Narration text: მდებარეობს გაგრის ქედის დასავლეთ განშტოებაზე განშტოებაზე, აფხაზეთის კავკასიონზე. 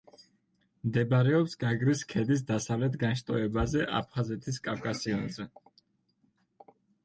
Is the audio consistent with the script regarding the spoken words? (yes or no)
no